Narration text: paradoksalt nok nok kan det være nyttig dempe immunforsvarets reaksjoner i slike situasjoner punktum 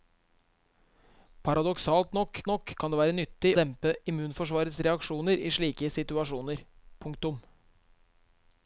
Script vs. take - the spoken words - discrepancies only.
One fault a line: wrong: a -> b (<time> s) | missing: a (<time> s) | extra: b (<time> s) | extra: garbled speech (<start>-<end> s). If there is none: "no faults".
no faults